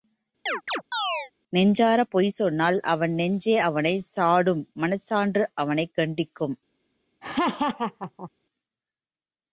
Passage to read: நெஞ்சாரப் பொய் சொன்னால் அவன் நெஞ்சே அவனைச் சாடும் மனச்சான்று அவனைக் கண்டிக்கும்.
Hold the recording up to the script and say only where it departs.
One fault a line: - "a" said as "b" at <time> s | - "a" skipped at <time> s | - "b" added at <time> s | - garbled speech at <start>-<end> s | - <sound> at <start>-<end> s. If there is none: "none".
- chirp at 0.5-1.3 s
- laugh at 7.2-8.3 s